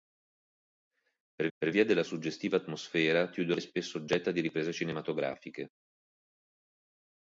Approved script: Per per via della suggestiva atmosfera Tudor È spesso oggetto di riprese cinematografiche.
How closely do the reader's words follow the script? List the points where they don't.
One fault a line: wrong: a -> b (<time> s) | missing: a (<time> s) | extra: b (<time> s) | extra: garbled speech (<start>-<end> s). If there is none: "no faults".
no faults